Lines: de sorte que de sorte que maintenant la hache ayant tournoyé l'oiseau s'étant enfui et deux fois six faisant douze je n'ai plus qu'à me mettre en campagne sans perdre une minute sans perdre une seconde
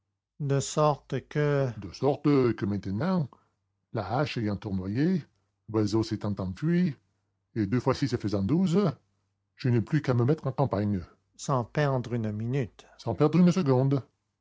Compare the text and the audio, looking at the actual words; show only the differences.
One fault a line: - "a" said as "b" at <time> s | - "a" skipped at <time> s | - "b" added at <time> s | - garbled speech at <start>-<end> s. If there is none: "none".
none